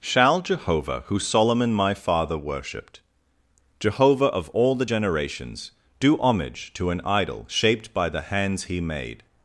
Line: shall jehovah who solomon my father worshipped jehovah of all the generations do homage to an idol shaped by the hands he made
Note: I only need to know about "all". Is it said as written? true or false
true